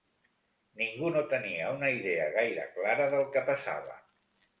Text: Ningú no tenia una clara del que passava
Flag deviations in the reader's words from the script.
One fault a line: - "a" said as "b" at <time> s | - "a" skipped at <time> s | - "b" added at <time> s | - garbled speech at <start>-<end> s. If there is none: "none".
- "idea gaire" added at 2.0 s